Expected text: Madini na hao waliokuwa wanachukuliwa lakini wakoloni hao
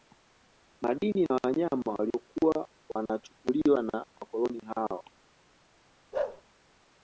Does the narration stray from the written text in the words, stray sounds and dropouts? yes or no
yes